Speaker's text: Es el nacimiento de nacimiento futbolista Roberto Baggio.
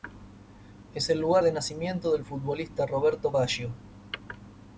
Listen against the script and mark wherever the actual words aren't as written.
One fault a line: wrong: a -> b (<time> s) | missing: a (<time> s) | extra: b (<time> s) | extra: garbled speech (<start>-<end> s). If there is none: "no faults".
wrong: nacimiento -> lugar (1.2 s)
extra: del (2.1 s)